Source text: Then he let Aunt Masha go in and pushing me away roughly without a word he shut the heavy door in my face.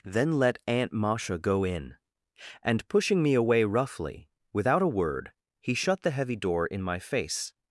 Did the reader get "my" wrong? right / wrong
right